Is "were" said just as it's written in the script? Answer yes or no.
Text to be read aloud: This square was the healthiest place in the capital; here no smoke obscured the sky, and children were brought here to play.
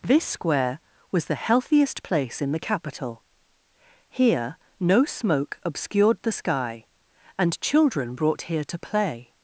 no